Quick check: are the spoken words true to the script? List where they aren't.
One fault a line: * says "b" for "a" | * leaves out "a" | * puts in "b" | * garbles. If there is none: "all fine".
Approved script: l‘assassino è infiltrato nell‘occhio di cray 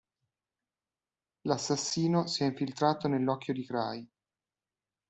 * puts in "si"